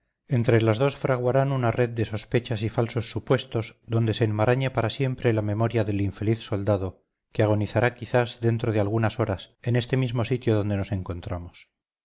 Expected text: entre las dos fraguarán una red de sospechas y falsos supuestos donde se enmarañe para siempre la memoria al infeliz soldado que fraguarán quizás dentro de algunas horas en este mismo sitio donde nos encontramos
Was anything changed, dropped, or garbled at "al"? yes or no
yes